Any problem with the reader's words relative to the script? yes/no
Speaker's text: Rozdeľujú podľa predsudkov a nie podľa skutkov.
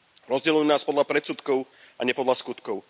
yes